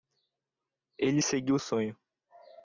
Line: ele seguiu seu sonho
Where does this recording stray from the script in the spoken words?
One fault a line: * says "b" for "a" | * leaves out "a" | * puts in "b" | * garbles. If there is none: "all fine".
* leaves out "seu"